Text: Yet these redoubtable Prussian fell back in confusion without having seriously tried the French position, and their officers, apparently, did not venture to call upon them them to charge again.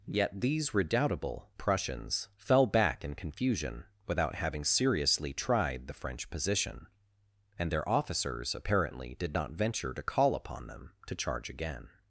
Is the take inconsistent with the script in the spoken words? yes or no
yes